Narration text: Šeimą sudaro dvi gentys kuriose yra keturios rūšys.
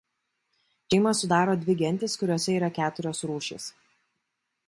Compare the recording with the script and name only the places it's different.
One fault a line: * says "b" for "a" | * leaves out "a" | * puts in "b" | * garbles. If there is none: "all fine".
all fine